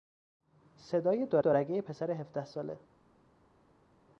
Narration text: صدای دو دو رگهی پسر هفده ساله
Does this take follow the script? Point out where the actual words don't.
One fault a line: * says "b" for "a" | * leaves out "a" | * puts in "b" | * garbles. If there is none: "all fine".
all fine